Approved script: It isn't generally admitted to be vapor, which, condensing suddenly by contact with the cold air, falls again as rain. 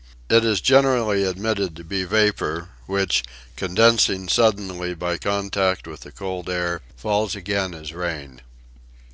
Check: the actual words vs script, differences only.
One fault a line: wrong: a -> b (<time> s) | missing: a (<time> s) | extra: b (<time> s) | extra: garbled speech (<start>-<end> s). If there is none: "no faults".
wrong: isn't -> is (0.4 s)